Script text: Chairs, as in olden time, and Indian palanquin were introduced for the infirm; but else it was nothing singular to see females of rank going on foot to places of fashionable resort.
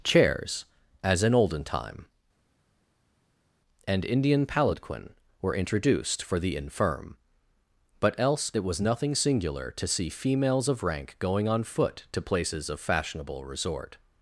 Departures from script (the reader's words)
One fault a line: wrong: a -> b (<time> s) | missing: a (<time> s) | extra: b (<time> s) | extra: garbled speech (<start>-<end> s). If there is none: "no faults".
no faults